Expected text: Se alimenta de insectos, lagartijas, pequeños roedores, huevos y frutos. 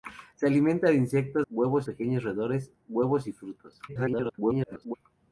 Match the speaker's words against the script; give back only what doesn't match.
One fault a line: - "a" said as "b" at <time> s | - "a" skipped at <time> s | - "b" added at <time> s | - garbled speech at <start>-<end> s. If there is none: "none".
- "lagartijas" said as "huevos" at 1.5 s
- garbled speech at 3.9-5.0 s